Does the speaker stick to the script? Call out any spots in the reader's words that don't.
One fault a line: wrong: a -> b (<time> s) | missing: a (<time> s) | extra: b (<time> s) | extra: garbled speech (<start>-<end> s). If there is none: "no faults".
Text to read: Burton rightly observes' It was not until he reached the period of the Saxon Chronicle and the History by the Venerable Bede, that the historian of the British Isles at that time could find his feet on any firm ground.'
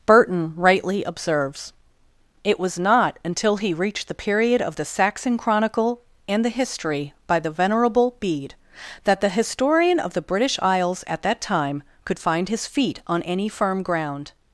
no faults